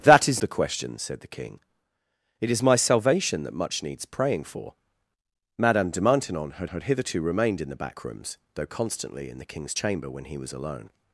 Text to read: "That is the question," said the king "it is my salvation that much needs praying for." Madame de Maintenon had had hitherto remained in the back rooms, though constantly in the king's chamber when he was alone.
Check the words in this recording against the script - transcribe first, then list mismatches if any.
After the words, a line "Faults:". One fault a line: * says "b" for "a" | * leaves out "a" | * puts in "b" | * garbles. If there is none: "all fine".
"That is the question," said the king "it is my salvation that much needs praying for." Madame de Maintenon had had hitherto remained in the back rooms, though constantly in the king's chamber when he was alone.
Faults:
all fine